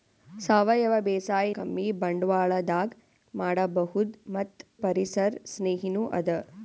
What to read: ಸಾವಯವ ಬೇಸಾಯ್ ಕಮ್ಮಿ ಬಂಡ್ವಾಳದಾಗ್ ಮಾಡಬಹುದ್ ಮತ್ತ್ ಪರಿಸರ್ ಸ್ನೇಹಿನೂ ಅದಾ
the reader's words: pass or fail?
pass